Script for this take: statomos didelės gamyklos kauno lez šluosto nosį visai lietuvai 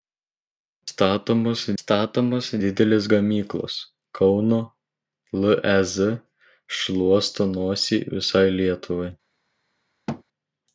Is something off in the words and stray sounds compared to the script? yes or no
yes